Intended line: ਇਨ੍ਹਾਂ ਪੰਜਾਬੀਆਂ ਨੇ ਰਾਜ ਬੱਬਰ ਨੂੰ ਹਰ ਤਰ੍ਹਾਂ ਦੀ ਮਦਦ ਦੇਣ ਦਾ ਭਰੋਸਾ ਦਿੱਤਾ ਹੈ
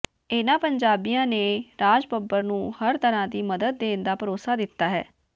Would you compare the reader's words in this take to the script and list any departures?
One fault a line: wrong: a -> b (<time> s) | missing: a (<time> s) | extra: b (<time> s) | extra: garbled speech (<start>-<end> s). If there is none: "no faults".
no faults